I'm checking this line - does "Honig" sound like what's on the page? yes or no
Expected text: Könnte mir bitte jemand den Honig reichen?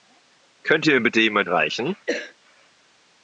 no